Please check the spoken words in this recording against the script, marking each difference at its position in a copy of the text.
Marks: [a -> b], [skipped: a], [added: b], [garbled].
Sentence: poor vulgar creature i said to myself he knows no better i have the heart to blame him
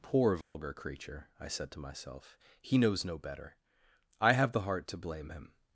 poor vulgar creature i said to myself he knows no better i have the heart to blame him